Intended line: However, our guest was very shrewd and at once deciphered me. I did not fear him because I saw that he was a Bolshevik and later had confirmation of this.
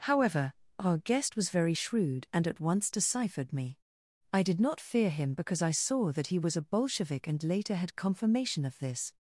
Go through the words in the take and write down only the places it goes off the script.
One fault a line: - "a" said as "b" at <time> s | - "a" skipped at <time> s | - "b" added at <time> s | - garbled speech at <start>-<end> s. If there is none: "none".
none